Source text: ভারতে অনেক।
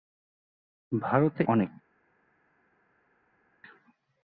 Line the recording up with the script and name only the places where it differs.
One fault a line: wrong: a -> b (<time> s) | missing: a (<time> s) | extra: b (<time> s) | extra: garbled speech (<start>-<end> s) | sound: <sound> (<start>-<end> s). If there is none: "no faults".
no faults